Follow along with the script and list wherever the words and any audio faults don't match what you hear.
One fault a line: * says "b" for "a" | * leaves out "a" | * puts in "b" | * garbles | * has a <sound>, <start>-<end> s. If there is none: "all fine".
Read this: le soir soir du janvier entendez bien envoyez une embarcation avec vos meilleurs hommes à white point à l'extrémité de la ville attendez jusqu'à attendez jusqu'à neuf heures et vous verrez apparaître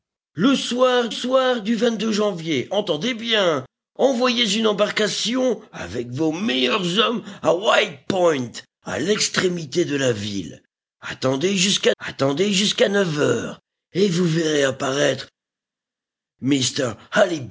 all fine